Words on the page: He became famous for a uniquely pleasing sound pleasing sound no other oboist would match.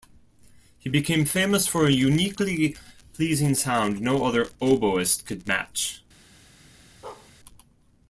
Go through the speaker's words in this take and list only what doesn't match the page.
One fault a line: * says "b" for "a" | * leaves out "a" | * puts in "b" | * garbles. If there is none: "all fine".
* leaves out "pleasing sound"
* says "could" for "would"